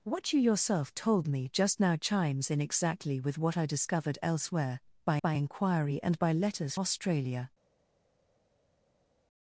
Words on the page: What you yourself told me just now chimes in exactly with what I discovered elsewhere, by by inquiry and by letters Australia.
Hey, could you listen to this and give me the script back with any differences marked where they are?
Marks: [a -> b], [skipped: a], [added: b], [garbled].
What you yourself told me just now chimes in exactly with what I discovered elsewhere, by by inquiry and by letters Australia.